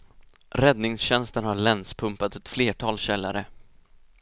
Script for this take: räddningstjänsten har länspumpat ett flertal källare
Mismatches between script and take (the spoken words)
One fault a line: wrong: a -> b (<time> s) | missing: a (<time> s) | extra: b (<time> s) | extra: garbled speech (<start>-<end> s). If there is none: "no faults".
no faults